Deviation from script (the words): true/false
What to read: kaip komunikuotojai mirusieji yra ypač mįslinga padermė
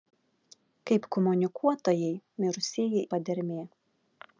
true